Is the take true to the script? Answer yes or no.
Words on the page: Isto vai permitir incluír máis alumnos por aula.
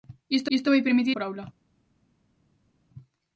no